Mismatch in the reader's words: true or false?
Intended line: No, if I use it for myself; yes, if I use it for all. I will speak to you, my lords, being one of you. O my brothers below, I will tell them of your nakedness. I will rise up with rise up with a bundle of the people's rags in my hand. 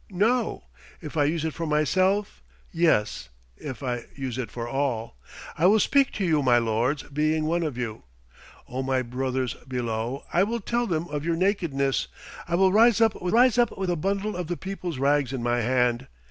false